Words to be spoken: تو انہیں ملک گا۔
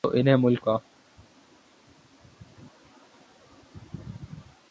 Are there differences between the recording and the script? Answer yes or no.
no